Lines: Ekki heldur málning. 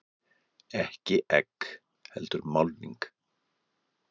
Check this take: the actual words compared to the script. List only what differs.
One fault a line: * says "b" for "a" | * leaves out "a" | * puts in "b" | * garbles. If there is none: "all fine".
* puts in "egg"